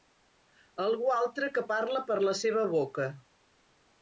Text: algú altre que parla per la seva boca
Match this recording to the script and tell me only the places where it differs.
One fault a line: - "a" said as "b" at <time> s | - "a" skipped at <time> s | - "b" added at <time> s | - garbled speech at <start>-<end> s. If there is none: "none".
none